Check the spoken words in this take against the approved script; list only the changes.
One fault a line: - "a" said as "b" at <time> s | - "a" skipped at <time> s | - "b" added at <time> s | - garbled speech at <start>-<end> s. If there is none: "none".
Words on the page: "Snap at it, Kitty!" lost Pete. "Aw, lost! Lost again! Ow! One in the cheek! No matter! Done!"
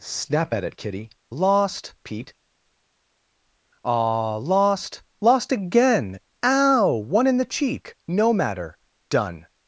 none